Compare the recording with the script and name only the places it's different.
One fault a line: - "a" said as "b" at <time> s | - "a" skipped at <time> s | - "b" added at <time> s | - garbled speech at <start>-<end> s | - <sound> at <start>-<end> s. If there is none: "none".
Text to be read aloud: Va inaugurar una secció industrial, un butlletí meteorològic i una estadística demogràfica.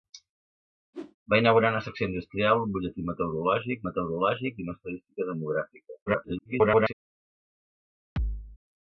- whoosh at 0.9-1.2 s
- "meteorològic" added at 3.9 s
- garbled speech at 6.1-6.9 s
- thud at 8.2-8.6 s